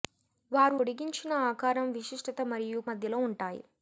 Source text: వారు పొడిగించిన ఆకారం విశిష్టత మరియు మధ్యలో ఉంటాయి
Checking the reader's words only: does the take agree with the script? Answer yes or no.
yes